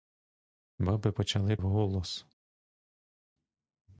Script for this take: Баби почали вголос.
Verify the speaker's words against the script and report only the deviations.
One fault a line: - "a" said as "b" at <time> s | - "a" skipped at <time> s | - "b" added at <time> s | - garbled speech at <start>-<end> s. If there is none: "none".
none